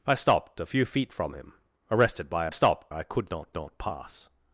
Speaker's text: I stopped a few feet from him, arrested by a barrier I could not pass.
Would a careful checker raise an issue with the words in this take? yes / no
yes